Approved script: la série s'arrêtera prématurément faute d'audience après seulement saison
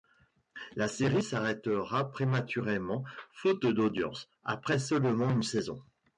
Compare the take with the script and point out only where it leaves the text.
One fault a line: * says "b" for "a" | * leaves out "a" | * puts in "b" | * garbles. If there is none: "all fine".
* puts in "une"